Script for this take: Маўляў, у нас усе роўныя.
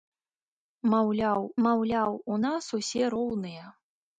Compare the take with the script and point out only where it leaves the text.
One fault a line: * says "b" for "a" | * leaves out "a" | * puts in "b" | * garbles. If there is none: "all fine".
* puts in "маўляў"